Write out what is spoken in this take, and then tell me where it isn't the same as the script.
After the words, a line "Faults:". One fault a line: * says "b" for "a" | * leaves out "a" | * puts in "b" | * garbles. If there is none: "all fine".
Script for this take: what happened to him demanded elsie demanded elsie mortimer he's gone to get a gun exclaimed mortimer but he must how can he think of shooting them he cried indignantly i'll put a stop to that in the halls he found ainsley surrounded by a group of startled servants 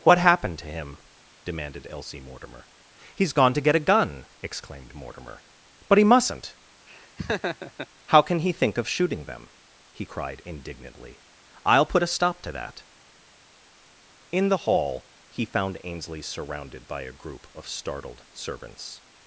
what happened to him demanded elsie mortimer he's gone to get a gun exclaimed mortimer but he mustn't how can he think of shooting them he cried indignantly i'll put a stop to that in the hall he found ainsley surrounded by a group of startled servants
Faults:
* leaves out "demanded elsie"
* says "mustn't" for "must"
* says "hall" for "halls"